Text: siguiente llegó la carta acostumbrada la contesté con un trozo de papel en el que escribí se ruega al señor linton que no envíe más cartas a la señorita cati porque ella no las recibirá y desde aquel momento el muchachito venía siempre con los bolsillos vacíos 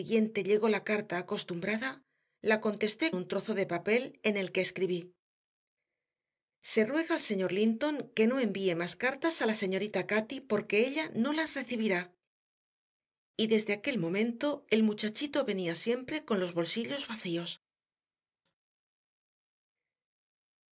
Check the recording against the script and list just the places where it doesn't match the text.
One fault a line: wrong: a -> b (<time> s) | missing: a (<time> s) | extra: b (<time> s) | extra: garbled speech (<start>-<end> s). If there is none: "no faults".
missing: con (3.1 s)